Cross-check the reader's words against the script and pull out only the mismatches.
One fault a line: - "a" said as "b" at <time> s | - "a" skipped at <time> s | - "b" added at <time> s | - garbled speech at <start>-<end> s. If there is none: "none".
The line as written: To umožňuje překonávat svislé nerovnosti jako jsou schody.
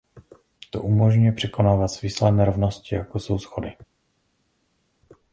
none